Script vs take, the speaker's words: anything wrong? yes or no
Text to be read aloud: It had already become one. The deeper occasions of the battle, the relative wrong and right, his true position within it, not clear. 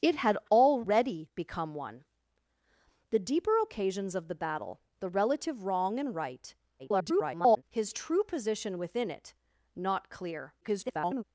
yes